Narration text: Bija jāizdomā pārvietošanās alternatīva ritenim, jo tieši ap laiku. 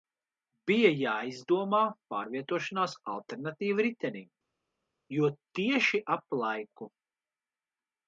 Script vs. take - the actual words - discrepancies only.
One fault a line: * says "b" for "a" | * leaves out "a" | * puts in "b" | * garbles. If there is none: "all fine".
all fine